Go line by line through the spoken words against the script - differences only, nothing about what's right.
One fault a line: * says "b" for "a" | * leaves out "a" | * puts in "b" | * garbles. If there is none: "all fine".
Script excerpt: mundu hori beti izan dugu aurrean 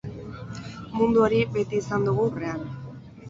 all fine